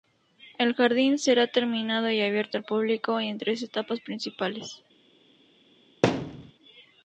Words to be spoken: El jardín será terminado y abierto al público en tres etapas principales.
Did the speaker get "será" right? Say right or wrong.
right